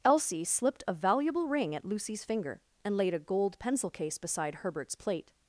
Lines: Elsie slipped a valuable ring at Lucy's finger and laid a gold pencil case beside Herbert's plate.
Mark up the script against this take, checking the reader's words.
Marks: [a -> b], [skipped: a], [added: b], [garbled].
Elsie slipped a valuable ring at Lucy's finger and laid a gold pencil case beside Herbert's plate.